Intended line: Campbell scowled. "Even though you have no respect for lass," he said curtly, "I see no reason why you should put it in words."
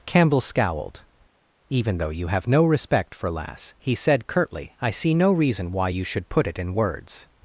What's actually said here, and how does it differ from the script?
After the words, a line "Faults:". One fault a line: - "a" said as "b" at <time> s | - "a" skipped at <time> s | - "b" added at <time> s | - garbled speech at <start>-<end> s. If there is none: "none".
Campbell scowled. "Even though you have no respect for lass," he said curtly, "I see no reason why you should put it in words."
Faults:
none